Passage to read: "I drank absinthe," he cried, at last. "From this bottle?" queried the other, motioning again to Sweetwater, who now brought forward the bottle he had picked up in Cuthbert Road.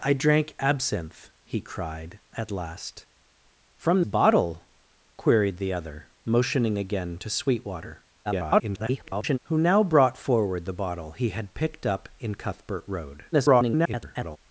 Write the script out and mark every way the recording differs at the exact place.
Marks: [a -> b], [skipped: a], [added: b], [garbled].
"I drank absinthe," he cried, at last. "From [skipped: this] bottle?" queried the other, motioning again to Sweetwater, [garbled] who now brought forward the bottle he had picked up in Cuthbert Road. [garbled]